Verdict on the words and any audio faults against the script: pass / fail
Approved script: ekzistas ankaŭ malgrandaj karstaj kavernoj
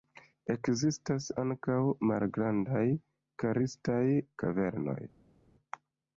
pass